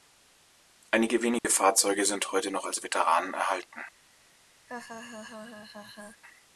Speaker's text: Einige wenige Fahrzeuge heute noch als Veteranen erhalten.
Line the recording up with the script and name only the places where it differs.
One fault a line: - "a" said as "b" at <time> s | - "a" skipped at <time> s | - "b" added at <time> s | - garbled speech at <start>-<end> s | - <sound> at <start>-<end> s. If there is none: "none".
- dropout at 1.4-1.4 s
- "sind" added at 2.0 s
- laugh at 4.7-6.2 s